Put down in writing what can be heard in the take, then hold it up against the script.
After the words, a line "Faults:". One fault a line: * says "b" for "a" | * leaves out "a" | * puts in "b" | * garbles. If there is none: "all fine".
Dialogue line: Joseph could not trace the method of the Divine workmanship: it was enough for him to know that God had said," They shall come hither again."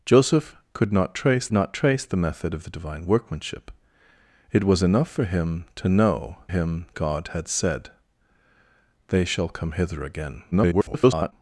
Joseph could not trace not trace the method of the Divine workmanship: it was enough for him to know him God had said," They shall come hither again." [garbled]
Faults:
* puts in "not trace"
* says "him" for "that"
* garbles